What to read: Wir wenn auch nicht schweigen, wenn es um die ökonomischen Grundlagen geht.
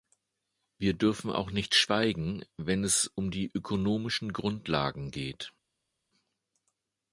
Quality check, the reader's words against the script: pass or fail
fail